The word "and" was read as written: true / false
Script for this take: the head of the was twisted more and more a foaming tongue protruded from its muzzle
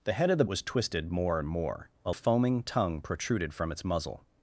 true